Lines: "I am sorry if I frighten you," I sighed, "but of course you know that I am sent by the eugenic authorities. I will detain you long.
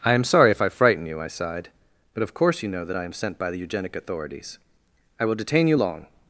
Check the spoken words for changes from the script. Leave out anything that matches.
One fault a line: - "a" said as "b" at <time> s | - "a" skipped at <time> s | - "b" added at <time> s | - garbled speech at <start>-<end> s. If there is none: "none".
none